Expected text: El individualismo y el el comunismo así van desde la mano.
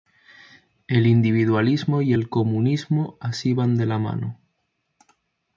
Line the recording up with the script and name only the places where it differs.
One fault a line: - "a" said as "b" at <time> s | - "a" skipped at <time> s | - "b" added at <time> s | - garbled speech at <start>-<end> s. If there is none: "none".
- "el" skipped at 2.3 s
- "desde" said as "de" at 3.8 s